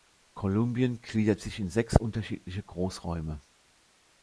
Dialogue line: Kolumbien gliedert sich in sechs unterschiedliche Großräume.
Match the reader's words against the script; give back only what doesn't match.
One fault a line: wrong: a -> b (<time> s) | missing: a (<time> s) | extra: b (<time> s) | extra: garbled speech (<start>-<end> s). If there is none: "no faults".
no faults